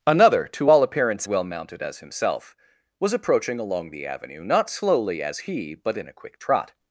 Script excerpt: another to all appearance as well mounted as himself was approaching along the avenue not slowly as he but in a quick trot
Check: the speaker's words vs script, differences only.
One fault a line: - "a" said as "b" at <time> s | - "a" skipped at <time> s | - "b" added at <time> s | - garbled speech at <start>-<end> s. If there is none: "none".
- "as" skipped at 1.3 s